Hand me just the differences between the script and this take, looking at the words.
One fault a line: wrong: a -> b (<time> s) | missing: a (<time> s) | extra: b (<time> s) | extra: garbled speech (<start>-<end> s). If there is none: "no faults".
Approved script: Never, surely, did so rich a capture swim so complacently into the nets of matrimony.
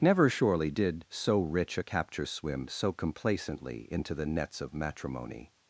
no faults